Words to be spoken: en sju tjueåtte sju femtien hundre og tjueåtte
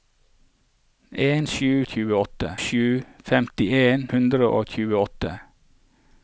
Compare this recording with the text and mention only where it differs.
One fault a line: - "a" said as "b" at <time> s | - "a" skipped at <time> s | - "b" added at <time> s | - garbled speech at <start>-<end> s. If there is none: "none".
none